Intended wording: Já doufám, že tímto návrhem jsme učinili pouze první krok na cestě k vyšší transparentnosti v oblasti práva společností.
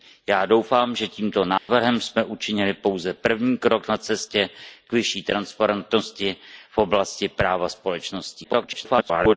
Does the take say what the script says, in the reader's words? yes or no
no